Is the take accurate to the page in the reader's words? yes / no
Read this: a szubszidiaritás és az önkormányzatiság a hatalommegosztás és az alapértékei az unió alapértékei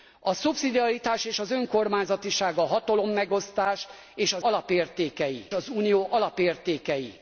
yes